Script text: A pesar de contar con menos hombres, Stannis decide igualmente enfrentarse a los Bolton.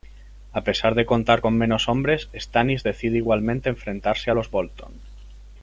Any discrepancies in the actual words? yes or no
no